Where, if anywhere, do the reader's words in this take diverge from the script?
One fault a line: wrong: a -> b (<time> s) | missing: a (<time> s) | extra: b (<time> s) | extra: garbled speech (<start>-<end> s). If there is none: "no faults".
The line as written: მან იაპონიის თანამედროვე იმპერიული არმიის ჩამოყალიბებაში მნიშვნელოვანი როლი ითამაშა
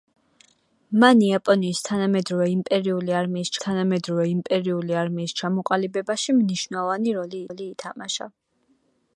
extra: თანამედროვე იმპერიული არმიის (3.6 s)
extra: როლი (7.5 s)